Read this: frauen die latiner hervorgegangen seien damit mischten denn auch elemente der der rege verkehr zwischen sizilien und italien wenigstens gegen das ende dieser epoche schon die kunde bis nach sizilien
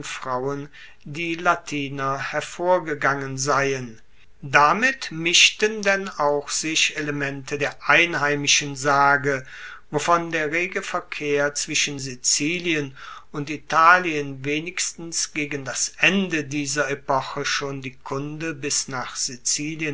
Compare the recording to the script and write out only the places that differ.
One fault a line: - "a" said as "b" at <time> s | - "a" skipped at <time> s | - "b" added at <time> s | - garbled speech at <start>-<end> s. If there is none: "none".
- "sich" added at 6.5 s
- "einheimischen sage wovon" added at 7.9 s